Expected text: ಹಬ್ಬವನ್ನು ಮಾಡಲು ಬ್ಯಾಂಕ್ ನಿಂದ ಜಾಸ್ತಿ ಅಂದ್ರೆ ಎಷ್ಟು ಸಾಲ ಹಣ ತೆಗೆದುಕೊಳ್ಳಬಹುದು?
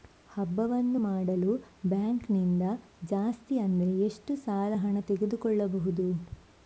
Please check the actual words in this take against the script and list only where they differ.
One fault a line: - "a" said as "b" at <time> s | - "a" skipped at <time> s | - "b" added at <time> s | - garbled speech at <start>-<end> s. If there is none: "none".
none